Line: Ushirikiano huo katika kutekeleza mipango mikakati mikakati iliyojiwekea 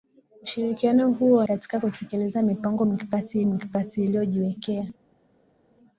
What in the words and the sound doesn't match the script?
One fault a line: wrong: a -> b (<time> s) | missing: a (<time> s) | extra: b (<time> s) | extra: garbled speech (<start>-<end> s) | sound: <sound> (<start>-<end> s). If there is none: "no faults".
no faults